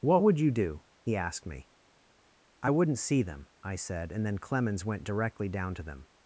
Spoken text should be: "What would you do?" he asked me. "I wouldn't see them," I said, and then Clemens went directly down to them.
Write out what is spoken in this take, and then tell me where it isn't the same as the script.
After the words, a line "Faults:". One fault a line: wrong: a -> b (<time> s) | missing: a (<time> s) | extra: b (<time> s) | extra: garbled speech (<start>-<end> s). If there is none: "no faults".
"What would you do?" he asked me. "I wouldn't see them," I said, and then Clemens went directly down to them.
Faults:
no faults